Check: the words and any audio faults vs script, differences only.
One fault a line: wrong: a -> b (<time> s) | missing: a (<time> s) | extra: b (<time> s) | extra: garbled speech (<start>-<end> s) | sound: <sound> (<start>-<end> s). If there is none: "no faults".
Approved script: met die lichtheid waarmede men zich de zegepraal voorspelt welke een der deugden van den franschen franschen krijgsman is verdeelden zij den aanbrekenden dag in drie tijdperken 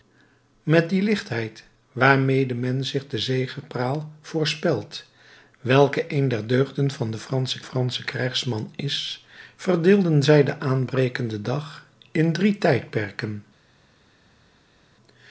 no faults